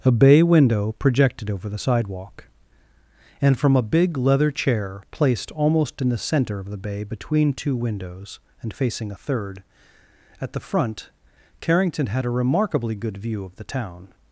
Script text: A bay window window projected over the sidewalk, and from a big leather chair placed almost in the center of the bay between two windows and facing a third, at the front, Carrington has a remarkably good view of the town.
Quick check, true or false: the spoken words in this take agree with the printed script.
false